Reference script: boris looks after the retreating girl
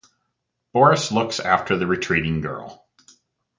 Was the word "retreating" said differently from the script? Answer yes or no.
no